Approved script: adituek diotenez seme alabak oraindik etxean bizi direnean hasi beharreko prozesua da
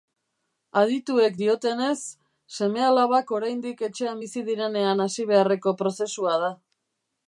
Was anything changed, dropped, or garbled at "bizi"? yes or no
no